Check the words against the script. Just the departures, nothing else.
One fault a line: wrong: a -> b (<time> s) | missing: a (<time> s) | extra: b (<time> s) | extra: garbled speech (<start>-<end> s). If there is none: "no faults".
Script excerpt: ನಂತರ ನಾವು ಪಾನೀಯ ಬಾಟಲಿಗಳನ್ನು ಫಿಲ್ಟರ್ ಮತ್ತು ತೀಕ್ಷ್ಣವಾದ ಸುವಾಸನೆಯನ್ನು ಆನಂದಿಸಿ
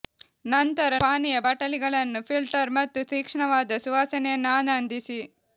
missing: ನಾವು (0.9 s)